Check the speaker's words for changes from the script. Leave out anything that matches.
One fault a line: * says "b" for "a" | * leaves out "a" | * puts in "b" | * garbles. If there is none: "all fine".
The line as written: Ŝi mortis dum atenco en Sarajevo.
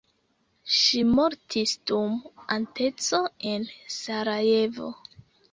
all fine